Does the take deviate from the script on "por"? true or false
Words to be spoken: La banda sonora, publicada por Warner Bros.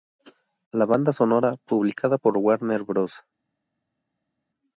false